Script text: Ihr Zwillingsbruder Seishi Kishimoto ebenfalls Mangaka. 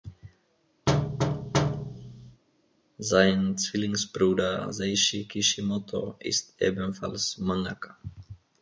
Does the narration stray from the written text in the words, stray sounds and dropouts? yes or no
yes